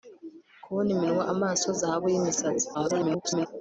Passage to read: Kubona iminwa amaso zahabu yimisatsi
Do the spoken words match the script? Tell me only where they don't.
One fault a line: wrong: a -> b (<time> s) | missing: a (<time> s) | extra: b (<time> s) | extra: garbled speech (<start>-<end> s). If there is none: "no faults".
extra: garbled speech (2.7-3.5 s)